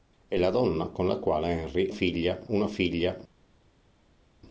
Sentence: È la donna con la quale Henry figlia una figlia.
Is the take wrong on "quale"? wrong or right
right